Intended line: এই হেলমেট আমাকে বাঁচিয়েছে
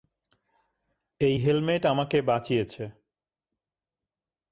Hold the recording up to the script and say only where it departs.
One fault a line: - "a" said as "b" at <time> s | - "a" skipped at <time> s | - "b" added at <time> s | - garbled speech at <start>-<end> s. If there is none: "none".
none